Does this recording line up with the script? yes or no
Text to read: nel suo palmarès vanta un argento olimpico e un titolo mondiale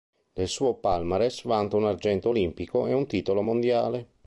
yes